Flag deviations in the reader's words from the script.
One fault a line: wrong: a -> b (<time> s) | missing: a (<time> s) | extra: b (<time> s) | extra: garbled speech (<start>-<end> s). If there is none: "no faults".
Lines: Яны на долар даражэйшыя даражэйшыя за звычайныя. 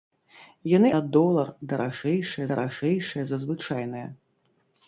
no faults